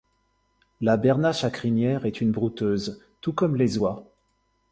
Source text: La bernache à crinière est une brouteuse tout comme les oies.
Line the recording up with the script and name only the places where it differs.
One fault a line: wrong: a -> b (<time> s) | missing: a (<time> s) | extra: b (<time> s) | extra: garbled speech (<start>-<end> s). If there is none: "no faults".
no faults